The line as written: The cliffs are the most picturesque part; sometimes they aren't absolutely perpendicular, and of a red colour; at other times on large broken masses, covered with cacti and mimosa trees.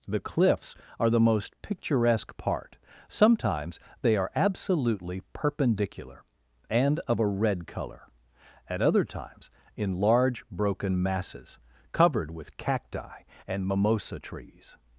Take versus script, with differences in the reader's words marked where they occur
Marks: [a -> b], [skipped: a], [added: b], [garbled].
The cliffs are the most picturesque part; sometimes they [aren't -> are] absolutely perpendicular, and of a red colour; at other times [on -> in] large broken masses, covered with cacti and mimosa trees.